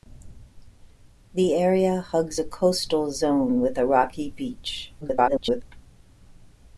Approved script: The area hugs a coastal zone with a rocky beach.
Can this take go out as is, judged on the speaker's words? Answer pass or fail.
fail